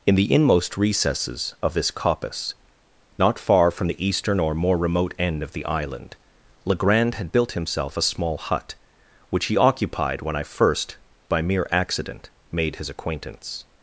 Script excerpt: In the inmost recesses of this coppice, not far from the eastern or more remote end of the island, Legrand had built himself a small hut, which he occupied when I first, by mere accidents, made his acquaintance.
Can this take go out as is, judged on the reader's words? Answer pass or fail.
fail